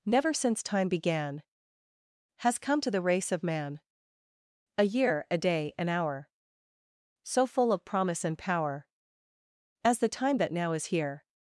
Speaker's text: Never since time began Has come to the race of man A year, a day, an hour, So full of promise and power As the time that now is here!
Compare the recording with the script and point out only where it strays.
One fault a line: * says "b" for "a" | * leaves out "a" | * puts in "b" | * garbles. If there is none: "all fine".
all fine